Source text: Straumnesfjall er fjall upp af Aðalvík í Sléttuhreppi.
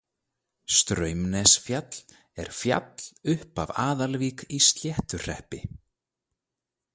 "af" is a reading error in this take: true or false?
false